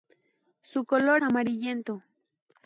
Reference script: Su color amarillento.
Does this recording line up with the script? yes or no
yes